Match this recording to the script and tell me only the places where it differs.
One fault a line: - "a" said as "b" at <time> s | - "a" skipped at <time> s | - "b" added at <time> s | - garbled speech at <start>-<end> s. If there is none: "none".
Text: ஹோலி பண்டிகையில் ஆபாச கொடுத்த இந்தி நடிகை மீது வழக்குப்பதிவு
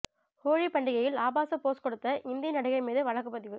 - "போஸ்" added at 1.6 s